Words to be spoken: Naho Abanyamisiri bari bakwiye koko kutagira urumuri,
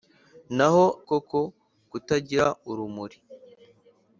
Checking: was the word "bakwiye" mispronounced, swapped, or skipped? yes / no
yes